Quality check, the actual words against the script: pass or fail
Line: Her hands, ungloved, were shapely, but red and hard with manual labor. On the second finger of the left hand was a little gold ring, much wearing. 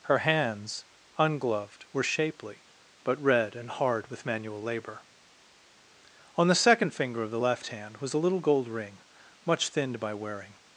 fail